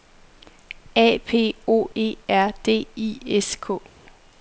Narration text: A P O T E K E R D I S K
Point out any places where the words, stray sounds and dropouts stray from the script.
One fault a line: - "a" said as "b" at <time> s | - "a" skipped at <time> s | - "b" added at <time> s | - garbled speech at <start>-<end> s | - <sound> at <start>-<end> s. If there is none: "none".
- "T E K" skipped at 1.9 s